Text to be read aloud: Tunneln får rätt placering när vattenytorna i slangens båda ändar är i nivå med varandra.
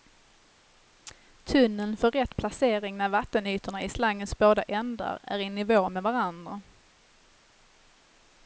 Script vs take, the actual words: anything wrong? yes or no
no